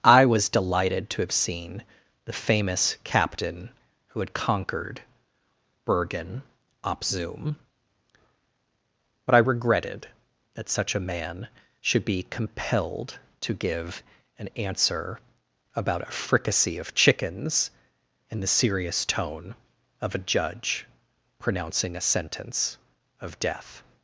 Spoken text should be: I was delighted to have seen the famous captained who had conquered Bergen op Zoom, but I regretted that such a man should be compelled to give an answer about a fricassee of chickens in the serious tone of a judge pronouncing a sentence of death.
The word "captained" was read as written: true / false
false